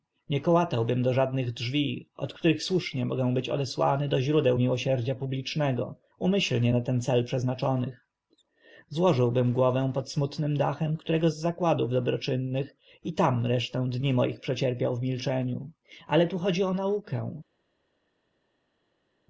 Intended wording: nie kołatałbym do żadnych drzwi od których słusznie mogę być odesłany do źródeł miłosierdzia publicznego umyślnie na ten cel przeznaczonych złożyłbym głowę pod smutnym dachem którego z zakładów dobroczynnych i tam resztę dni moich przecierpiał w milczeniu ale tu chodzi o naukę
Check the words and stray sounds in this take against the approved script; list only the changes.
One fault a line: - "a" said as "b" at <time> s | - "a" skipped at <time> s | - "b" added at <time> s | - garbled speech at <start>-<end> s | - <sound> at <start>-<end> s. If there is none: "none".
none